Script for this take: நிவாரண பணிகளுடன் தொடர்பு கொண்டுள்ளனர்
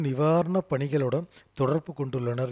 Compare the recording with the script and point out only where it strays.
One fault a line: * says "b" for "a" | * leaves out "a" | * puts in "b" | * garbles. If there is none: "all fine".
all fine